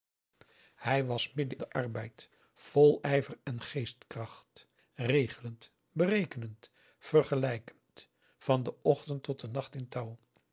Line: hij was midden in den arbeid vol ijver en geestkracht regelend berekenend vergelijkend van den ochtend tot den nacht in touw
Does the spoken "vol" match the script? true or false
true